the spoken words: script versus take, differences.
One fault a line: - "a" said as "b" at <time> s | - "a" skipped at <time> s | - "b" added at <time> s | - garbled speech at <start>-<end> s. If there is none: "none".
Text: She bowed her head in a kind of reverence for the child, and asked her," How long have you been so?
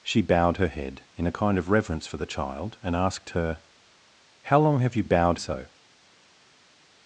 - "been" said as "bowed" at 5.0 s